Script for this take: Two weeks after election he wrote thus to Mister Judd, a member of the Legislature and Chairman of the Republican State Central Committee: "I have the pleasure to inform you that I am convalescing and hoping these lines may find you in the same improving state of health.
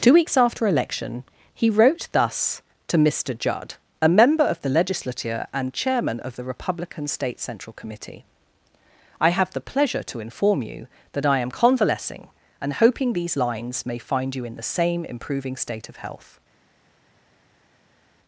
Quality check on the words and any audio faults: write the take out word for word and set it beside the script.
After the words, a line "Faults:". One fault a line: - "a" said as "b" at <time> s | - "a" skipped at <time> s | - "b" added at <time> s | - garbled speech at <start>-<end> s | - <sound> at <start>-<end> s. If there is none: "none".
Two weeks after election he wrote thus to Mister Judd, a member of the Legislature and Chairman of the Republican State Central Committee: "I have the pleasure to inform you that I am convalescing and hoping these lines may find you in the same improving state of health.
Faults:
none